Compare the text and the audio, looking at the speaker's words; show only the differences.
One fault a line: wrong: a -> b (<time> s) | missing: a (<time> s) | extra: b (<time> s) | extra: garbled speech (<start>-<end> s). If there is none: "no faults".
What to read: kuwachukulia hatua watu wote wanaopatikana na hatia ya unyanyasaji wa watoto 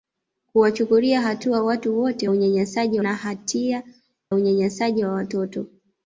wrong: wanaopatikana -> unyanyasaji (2.3 s)
missing: ya (3.8 s)